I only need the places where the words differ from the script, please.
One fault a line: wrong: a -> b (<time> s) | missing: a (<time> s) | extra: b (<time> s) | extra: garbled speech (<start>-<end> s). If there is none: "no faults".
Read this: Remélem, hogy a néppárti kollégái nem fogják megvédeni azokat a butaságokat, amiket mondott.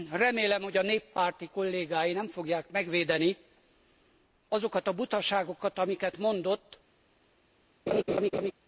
no faults